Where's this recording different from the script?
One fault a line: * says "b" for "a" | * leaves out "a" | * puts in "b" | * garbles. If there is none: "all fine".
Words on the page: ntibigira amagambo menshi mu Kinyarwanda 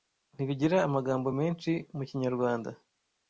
all fine